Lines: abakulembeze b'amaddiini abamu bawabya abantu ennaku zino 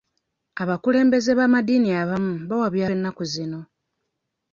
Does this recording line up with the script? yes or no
no